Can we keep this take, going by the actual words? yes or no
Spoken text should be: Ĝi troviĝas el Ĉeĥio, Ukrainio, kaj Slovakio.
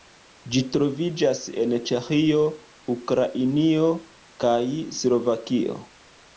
no